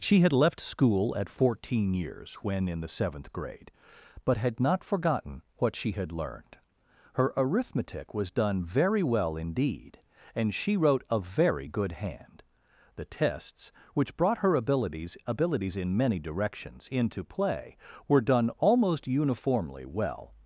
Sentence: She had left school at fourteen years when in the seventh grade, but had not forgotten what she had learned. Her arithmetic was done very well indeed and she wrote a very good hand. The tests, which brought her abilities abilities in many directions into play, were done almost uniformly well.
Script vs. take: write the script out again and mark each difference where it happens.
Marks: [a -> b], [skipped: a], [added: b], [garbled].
She had left school at fourteen years when in the seventh grade, but had not forgotten what she had learned. Her arithmetic was done very well indeed and she wrote a very good hand. The tests, which brought her abilities abilities in many directions into play, were done almost uniformly well.